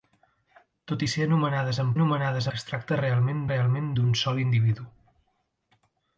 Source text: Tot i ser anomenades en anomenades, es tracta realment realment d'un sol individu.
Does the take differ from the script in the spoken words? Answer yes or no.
no